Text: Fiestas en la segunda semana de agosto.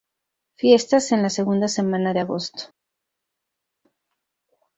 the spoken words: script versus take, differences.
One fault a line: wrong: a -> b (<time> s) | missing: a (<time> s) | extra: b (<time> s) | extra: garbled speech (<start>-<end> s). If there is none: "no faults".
no faults